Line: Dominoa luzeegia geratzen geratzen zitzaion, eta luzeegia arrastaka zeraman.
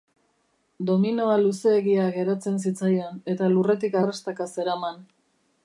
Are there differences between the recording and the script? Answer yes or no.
yes